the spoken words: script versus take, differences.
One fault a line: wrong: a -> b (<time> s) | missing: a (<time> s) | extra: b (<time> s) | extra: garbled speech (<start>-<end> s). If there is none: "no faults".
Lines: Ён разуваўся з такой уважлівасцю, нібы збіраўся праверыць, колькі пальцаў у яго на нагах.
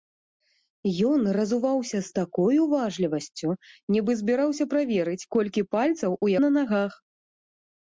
missing: яго (6.3 s)